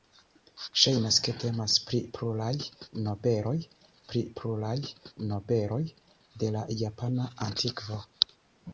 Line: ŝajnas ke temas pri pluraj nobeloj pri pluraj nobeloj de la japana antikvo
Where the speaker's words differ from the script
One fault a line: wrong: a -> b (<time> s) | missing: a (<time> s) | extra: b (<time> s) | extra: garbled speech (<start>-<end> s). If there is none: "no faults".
no faults